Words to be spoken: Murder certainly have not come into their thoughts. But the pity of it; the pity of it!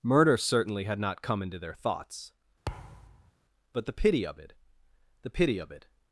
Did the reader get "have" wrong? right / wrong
wrong